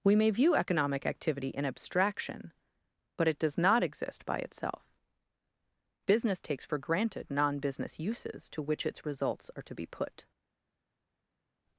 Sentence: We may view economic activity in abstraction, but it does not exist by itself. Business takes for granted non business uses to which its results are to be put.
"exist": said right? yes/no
yes